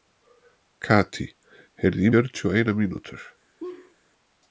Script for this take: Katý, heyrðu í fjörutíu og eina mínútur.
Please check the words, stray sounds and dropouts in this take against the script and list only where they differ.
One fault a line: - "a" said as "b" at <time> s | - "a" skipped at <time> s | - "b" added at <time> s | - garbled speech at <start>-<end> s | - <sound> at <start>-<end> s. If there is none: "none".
- laugh at 3.6-4.0 s